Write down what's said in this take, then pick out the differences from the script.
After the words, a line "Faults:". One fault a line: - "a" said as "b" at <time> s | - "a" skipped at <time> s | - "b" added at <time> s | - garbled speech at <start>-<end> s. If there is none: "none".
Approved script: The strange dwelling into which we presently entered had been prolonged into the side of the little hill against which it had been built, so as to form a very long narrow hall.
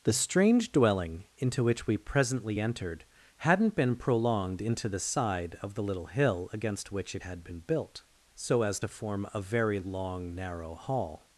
The strange dwelling into which we presently entered hadn't been prolonged into the side of the little hill against which it had been built, so as to form a very long narrow hall.
Faults:
- "had" said as "hadn't" at 3.4 s